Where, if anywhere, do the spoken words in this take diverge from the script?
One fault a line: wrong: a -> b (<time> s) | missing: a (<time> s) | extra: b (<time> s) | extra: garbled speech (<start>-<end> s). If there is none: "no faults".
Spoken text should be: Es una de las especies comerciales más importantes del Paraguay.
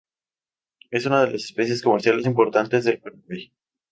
missing: más (2.2 s)